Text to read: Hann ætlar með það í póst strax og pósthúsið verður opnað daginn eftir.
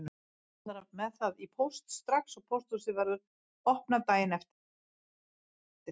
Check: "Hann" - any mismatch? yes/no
no